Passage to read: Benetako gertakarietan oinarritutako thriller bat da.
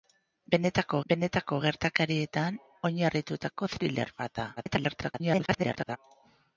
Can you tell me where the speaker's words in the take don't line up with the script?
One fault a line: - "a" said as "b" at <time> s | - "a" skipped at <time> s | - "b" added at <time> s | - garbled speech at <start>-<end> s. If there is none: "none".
- "benetako" added at 1.1 s
- garbled speech at 4.6-6.0 s